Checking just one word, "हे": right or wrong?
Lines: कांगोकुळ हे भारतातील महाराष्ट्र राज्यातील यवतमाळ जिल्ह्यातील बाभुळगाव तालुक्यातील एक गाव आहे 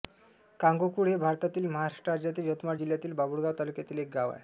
right